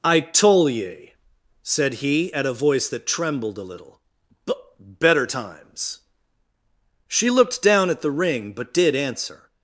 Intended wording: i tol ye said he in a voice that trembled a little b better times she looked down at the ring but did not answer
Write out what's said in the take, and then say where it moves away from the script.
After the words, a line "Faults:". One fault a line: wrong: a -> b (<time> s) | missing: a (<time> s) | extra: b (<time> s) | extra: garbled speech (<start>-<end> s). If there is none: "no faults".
i tol ye said he at a voice that trembled a little b better times she looked down at the ring but did answer
Faults:
wrong: in -> at (2.3 s)
missing: not (9.0 s)